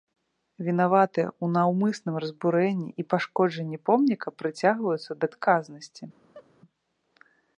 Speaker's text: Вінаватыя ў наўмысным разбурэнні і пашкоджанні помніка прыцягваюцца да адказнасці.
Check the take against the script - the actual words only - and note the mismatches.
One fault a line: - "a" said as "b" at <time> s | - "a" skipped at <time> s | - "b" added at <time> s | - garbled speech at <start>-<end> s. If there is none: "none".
none